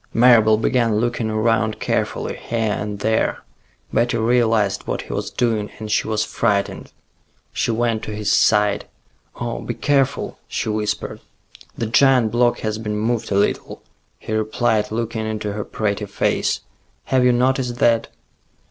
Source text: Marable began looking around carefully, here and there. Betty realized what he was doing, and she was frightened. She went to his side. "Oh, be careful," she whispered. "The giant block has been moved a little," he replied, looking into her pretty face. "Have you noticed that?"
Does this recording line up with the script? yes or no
yes